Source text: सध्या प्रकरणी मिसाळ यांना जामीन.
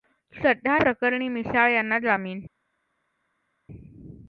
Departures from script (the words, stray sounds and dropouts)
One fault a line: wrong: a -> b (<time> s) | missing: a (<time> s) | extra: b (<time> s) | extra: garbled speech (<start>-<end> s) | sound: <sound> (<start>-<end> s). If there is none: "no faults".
no faults